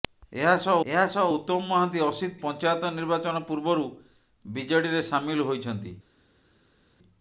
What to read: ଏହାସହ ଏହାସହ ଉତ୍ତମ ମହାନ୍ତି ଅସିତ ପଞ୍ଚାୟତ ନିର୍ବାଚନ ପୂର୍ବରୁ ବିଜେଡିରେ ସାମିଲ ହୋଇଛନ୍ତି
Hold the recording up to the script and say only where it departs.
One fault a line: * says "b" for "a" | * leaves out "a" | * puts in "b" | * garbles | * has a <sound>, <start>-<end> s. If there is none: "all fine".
all fine